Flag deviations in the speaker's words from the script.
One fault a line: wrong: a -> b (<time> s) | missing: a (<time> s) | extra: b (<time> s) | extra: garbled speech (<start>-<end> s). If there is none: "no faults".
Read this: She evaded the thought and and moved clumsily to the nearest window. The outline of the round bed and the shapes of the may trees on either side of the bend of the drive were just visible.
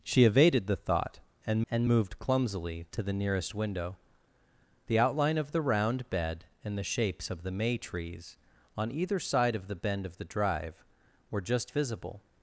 no faults